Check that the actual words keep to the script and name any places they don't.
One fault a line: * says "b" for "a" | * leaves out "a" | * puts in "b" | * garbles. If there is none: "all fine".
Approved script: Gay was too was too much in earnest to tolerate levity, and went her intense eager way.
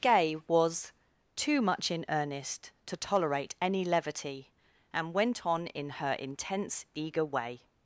* leaves out "was too"
* puts in "any"
* puts in "on in"